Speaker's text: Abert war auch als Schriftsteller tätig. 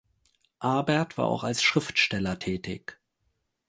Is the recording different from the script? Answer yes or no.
no